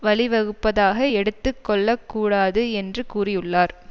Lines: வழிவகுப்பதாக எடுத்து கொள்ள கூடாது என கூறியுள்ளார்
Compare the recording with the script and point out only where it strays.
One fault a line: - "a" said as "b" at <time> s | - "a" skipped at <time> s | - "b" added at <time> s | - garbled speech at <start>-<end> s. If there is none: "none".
- "என" said as "என்று" at 2.7 s